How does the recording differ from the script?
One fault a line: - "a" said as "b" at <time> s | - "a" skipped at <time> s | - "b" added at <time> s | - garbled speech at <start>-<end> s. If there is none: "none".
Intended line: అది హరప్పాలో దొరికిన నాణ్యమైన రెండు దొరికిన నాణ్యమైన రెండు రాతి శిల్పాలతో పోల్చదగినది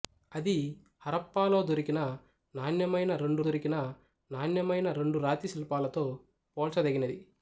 none